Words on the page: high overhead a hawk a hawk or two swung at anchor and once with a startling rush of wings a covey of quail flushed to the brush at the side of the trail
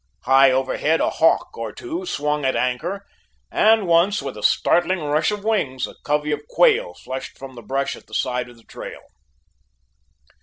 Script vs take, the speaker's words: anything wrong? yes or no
yes